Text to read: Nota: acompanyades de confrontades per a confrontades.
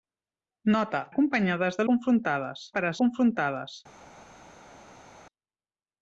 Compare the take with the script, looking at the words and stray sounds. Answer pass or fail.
pass